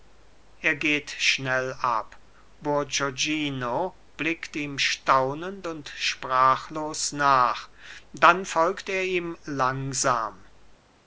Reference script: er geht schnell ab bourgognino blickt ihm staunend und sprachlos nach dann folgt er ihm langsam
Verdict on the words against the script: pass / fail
pass